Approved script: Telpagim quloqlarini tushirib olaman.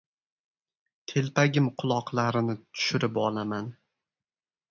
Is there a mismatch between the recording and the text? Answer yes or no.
no